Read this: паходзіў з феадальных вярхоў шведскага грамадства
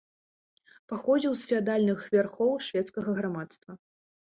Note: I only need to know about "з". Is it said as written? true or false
true